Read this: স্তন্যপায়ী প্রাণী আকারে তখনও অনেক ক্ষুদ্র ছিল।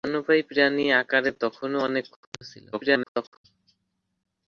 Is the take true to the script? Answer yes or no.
no